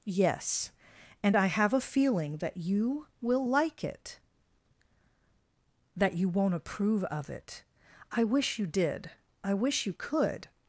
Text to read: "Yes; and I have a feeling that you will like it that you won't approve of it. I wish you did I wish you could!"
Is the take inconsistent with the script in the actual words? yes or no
no